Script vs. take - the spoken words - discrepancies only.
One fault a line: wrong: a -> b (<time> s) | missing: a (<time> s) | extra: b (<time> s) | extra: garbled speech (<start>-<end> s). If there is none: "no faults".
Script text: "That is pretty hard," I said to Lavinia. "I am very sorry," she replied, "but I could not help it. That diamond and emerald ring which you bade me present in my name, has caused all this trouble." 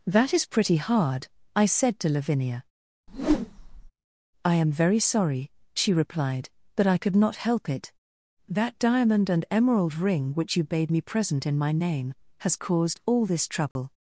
no faults